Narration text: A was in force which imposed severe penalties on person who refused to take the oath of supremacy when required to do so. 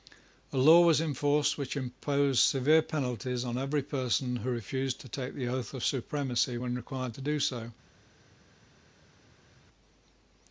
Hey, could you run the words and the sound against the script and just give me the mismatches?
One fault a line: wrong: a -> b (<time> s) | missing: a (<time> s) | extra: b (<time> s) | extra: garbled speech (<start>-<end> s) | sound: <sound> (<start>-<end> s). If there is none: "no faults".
extra: law (0.6 s)
extra: every (3.5 s)